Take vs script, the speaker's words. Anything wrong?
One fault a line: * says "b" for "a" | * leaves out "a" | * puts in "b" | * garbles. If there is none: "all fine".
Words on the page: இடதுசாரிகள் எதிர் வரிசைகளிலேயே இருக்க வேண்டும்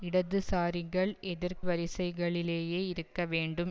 all fine